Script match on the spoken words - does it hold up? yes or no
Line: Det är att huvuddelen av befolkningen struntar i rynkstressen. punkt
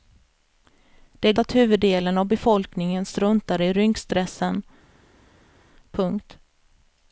yes